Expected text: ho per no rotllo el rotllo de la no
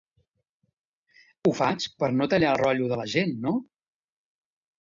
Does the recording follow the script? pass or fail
fail